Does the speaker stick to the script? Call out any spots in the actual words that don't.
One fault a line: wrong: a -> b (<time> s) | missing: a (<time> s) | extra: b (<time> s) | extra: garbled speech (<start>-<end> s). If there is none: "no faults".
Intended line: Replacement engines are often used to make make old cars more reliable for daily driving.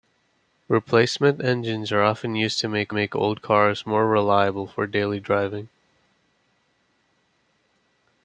no faults